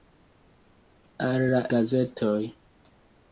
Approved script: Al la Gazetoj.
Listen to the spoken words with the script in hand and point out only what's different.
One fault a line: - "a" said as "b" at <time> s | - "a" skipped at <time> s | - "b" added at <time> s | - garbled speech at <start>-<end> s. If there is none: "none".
none